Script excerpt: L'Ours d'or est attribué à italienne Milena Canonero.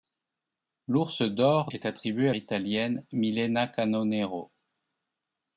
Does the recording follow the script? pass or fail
pass